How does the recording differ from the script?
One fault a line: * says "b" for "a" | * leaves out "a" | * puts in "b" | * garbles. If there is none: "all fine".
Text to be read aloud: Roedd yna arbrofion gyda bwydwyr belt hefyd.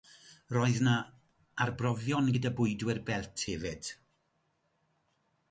all fine